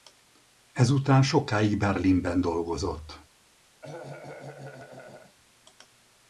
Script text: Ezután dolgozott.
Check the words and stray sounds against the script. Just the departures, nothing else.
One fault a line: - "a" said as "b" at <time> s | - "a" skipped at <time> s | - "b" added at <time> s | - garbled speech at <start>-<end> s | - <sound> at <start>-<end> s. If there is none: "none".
- "sokáig Berlinben" added at 1.2 s
- cough at 3.8-5.4 s